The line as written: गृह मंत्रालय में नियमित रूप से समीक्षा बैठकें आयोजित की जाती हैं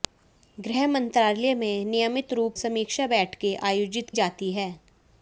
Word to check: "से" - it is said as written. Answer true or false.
false